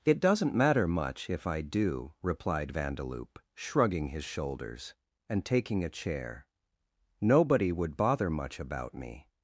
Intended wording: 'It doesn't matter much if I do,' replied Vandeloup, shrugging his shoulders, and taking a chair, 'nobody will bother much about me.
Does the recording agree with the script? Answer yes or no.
no